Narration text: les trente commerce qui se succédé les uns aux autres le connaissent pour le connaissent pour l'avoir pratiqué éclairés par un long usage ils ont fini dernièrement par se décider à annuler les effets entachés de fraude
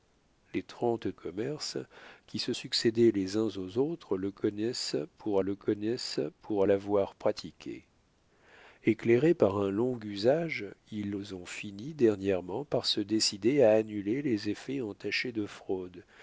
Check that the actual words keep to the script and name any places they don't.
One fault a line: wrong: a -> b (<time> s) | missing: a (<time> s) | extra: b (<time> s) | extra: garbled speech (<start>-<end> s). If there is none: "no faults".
no faults